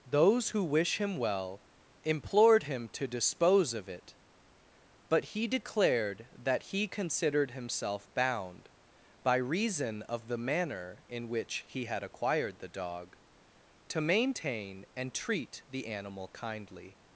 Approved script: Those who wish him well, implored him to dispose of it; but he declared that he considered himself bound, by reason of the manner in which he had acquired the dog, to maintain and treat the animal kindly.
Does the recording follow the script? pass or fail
pass